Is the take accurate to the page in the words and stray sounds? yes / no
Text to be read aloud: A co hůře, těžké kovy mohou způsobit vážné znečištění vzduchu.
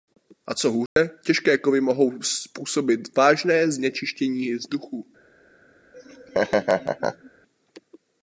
no